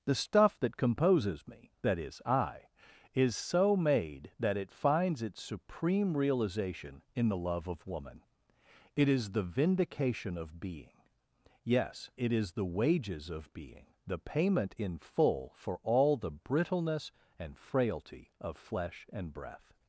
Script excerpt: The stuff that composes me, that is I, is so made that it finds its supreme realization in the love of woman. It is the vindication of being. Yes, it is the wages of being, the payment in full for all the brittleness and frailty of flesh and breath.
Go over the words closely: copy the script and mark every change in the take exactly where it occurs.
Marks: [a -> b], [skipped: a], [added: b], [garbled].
The stuff that composes me, that is I, is so made that it finds its supreme realization in the love of woman. It is the vindication of being. Yes, it is the wages of being, the payment in full for all the brittleness and frailty of flesh and breath.